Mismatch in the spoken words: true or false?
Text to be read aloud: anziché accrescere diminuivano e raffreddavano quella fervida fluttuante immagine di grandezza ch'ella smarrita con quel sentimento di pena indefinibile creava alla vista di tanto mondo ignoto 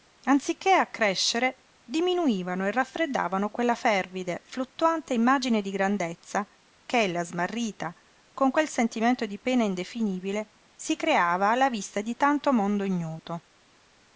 true